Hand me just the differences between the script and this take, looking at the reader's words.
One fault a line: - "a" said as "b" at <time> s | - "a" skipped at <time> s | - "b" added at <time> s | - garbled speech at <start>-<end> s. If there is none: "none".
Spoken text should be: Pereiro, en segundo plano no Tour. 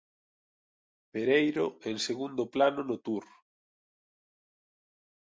none